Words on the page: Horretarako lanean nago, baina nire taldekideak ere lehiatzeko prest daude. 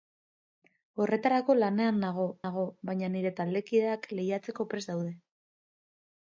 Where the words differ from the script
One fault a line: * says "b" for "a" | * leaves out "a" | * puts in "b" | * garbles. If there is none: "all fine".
* puts in "nago"
* leaves out "ere"